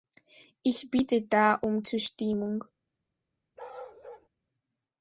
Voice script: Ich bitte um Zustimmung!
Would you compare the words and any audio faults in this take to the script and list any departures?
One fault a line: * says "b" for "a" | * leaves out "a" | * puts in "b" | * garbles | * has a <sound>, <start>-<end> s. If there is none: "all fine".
* puts in "da"
* has a bark, 3.6-4.3 s